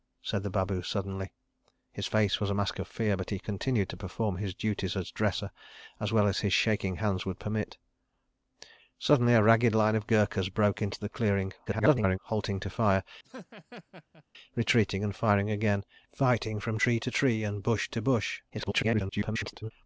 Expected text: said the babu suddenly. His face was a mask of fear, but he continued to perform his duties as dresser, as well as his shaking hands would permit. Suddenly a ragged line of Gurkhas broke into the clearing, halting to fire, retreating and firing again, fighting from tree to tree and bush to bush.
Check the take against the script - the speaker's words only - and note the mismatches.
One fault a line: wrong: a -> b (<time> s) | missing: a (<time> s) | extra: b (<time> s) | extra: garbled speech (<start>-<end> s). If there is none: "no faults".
extra: garbled speech (11.7-12.2 s)
extra: garbled speech (18.5-19.7 s)